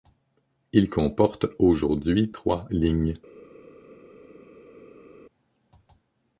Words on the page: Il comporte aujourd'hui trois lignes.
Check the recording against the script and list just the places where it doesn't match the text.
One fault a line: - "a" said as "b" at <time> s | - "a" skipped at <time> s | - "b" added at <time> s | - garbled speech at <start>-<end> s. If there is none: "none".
none